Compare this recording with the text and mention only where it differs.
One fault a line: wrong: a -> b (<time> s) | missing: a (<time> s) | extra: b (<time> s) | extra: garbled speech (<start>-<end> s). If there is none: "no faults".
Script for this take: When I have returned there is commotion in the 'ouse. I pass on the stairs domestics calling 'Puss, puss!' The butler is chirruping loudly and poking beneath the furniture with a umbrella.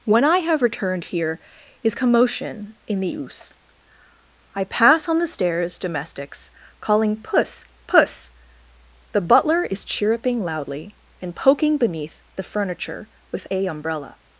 wrong: there -> here (1.1 s)